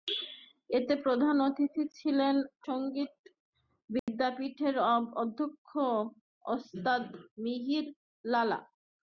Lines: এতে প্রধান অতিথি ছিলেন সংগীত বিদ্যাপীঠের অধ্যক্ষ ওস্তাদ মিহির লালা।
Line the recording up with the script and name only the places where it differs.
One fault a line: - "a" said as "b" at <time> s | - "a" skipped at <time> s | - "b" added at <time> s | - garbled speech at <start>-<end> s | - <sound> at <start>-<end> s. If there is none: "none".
- dropout at 4.0-4.1 s